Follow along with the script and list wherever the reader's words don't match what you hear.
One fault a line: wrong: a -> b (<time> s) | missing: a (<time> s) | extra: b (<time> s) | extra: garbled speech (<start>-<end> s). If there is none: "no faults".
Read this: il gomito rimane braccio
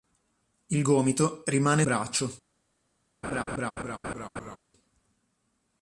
no faults